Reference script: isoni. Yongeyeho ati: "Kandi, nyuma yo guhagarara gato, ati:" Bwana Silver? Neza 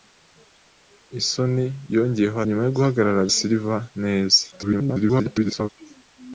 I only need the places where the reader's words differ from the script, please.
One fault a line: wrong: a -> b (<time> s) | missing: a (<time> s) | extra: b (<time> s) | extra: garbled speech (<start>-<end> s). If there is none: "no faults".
missing: ati Kandi (2.4 s)
missing: gato ati Bwana (3.3 s)
extra: garbled speech (4.5-5.7 s)